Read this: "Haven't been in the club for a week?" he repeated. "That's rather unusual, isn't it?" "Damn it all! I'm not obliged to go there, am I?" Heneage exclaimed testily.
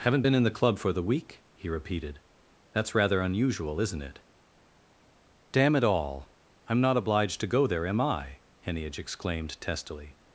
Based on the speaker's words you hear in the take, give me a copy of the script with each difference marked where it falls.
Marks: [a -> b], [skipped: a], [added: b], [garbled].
"Haven't been in the club for [a -> the] week?" he repeated. "That's rather unusual, isn't it?" "Damn it all! I'm not obliged to go there, am I?" Heneage exclaimed testily.